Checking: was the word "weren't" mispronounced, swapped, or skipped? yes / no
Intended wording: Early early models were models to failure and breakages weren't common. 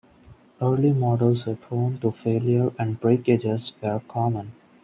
yes